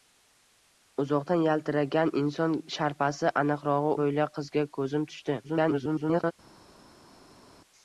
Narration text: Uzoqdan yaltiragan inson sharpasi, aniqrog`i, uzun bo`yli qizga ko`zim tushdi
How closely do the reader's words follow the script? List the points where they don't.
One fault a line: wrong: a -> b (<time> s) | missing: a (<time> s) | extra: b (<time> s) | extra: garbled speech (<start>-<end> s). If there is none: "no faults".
missing: uzun (3.9 s)
extra: garbled speech (5.4-6.3 s)